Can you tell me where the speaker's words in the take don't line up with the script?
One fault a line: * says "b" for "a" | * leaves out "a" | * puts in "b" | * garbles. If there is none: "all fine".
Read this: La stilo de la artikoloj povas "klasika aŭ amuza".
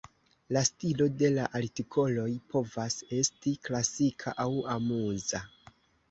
* puts in "esti"